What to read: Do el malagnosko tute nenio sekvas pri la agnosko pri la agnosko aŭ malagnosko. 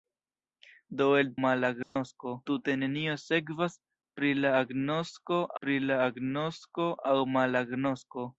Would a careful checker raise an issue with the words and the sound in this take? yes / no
yes